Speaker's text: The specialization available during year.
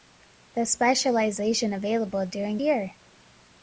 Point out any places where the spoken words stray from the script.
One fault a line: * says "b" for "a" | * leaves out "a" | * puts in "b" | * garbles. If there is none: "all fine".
all fine